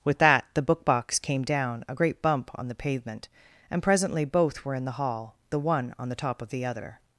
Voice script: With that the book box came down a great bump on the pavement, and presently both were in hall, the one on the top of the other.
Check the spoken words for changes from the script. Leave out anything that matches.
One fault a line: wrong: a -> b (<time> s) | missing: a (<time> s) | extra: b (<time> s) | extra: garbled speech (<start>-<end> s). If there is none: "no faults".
extra: the (4.9 s)